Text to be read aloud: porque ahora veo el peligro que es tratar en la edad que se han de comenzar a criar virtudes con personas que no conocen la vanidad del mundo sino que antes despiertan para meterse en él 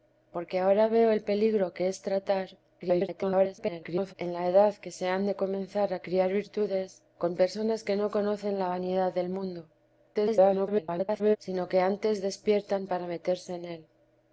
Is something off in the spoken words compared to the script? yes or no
yes